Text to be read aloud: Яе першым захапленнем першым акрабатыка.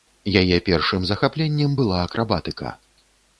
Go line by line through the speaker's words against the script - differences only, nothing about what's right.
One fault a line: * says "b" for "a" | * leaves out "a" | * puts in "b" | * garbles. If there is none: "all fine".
* says "была" for "першым"